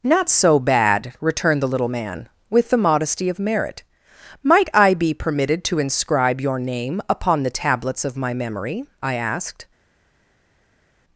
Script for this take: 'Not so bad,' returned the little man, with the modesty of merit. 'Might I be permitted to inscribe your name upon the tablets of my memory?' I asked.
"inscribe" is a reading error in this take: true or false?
false